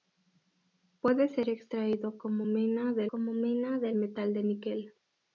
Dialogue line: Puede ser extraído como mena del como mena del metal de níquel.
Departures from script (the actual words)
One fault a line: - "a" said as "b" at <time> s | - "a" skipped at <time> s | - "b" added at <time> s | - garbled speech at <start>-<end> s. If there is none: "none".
none